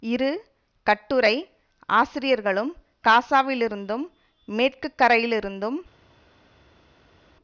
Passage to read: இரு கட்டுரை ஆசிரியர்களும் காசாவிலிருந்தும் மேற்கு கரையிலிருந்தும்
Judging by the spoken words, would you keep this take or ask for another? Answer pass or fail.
pass